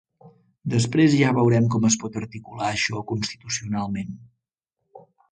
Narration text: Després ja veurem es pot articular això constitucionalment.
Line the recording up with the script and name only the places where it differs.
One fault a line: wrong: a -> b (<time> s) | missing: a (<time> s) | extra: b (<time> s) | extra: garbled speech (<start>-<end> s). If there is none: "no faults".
extra: com (1.8 s)